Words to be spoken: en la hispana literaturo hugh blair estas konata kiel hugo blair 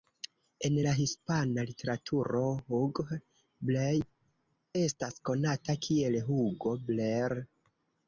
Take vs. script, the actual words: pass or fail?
pass